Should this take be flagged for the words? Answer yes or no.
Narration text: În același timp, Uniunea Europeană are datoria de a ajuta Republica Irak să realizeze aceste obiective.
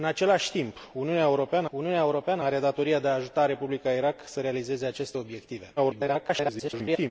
yes